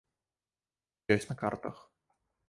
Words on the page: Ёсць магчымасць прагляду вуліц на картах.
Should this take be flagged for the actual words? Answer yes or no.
yes